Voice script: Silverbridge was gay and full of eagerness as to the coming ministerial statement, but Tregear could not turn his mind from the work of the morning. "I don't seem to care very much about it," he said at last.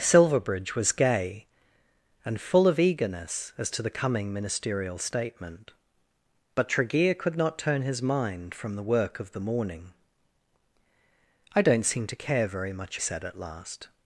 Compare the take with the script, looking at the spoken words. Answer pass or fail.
fail